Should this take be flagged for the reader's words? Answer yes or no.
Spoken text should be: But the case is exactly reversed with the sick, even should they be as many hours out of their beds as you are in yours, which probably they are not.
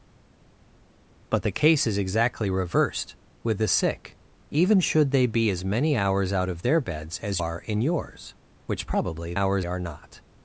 yes